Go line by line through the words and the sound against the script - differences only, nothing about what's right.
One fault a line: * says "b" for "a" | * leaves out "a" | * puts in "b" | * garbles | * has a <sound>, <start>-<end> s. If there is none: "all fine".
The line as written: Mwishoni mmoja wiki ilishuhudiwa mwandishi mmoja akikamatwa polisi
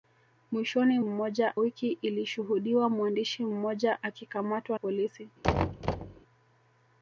* has a thud, 5.4-6.2 s